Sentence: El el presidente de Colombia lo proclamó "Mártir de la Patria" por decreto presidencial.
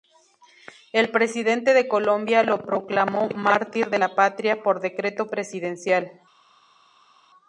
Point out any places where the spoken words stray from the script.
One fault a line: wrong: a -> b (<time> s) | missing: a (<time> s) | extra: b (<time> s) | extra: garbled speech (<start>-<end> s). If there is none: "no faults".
missing: el (1.1 s)